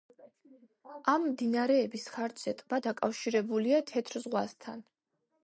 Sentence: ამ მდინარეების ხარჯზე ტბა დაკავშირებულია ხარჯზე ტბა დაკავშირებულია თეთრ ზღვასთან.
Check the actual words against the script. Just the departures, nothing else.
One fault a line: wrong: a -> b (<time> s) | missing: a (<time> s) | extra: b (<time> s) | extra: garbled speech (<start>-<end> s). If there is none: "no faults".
missing: ხარჯზე ტბა დაკავშირებულია (3.8 s)